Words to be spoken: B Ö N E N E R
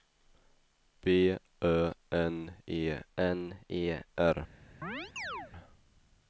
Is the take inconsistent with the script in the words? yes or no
no